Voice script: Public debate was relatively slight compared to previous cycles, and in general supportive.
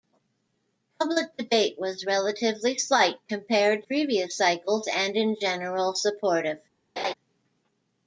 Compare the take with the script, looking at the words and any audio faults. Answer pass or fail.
fail